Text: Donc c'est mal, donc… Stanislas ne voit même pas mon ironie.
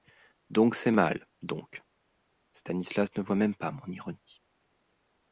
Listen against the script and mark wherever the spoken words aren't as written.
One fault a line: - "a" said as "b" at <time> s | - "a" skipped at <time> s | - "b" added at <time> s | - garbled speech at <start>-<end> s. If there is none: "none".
none